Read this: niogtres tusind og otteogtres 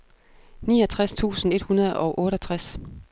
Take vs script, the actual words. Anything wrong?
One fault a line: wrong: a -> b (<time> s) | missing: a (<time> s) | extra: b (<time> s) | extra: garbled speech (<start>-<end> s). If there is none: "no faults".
extra: et hundrede (1.5 s)